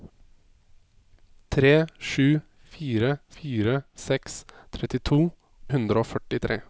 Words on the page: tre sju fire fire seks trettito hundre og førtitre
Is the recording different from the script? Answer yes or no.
no